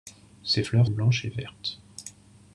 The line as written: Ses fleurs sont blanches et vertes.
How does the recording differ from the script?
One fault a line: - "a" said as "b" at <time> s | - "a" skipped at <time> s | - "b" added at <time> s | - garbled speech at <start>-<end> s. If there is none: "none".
- "sont" skipped at 0.9 s